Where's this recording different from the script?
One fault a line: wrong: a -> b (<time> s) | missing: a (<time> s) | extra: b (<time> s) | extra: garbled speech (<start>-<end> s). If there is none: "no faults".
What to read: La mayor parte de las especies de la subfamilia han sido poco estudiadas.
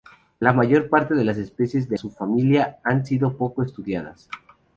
missing: la (2.0 s)